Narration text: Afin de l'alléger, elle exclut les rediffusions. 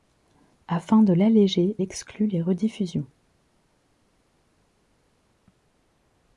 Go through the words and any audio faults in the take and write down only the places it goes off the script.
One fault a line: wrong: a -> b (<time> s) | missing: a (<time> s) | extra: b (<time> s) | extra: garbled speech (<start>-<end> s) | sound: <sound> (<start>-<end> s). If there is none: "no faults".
missing: elle (1.8 s)